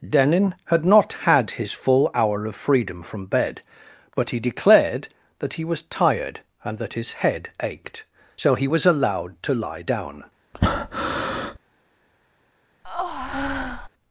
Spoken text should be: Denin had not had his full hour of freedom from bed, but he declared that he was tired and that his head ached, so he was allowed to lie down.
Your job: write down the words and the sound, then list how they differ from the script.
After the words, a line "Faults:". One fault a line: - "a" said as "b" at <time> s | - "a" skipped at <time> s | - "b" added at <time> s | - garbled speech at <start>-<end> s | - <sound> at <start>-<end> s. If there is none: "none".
Denin had not had his full hour of freedom from bed, but he declared that he was tired and that his head ached, so he was allowed to lie down.
Faults:
- breath at 10.5-11.6 s
- breath at 12.8-13.9 s